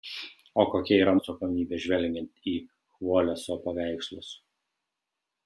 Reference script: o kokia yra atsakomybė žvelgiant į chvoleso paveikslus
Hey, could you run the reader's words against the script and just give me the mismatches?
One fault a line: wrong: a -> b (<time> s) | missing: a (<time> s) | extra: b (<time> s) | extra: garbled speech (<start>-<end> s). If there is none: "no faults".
no faults